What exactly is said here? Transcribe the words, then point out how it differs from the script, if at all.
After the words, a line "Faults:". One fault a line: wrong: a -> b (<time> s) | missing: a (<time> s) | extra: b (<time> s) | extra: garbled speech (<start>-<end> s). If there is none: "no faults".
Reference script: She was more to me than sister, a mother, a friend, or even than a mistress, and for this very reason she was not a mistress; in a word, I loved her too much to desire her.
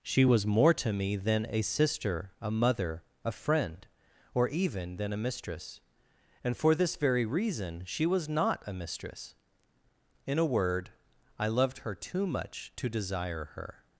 She was more to me than a sister, a mother, a friend, or even than a mistress, and for this very reason she was not a mistress; in a word, I loved her too much to desire her.
Faults:
extra: a (1.5 s)